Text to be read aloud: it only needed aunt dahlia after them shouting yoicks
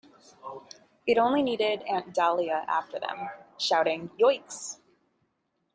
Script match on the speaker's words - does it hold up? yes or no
yes